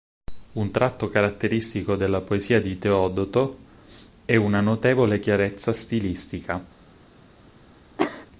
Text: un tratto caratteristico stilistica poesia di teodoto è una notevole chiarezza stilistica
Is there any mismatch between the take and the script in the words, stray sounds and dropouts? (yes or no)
yes